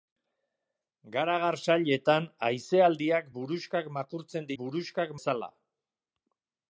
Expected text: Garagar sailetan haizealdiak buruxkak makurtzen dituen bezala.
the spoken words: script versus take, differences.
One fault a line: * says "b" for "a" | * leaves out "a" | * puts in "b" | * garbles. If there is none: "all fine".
* says "buruxkak" for "dituen"